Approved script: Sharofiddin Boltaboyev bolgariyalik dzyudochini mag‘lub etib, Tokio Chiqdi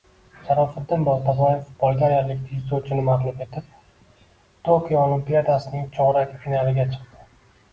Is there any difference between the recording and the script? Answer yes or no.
yes